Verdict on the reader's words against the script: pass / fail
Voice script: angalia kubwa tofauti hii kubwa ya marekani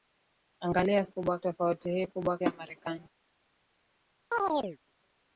pass